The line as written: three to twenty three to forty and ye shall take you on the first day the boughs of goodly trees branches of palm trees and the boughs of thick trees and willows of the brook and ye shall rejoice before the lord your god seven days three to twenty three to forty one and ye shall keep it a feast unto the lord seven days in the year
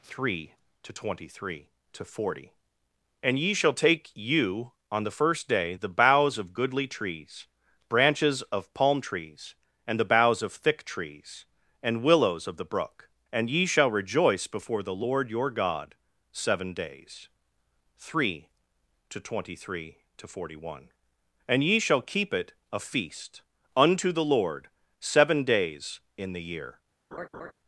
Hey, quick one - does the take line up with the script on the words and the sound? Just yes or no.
no